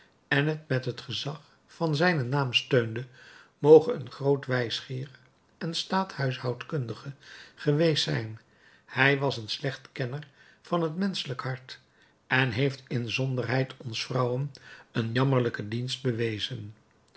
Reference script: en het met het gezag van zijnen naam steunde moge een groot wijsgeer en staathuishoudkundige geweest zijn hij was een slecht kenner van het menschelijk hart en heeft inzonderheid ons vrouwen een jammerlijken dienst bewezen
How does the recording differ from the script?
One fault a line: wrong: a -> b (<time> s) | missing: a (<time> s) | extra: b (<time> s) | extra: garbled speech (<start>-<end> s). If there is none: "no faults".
no faults